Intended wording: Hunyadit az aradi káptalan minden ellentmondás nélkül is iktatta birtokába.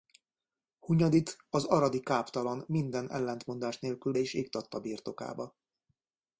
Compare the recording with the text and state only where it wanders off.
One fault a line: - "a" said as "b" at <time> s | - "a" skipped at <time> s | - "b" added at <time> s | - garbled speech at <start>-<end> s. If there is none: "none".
none